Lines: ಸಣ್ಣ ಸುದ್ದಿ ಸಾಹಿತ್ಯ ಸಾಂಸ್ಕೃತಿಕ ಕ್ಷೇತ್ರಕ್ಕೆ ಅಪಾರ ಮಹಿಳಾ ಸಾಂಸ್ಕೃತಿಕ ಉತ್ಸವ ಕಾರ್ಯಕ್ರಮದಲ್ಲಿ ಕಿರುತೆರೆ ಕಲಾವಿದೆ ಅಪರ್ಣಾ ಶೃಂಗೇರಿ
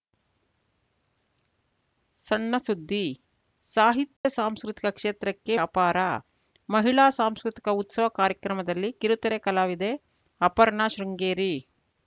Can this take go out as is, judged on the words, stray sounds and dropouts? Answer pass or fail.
fail